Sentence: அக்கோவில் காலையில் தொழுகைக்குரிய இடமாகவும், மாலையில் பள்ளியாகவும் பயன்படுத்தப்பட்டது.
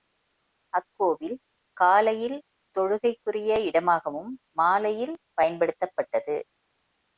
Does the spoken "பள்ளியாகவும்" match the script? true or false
false